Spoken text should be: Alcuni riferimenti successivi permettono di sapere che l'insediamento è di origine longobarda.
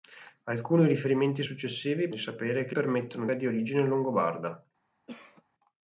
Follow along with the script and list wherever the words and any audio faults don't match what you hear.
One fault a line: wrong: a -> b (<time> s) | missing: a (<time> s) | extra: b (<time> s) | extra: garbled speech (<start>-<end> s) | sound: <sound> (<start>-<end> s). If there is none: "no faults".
missing: permettono (2.1 s)
wrong: l'insediamento -> permettono (2.7 s)
sound: cough (5.1-5.4 s)